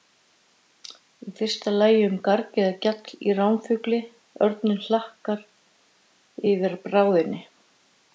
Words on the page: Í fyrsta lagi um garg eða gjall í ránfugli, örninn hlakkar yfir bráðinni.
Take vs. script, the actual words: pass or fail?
pass